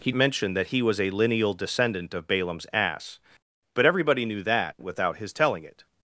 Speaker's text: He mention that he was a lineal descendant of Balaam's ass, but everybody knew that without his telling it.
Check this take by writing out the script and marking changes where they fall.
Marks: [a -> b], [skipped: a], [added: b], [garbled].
He mention that he was a lineal descendant of Balaam's ass, but everybody knew that without his telling it.